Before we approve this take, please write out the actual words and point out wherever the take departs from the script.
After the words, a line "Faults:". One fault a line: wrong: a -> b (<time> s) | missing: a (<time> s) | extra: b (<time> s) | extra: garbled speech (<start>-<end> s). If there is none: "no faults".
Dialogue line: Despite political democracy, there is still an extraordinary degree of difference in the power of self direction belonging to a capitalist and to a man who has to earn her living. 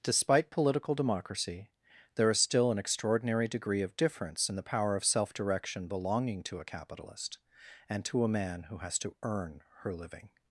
Despite political democracy, there is still an extraordinary degree of difference in the power of self direction belonging to a capitalist and to a man who has to earn her living.
Faults:
no faults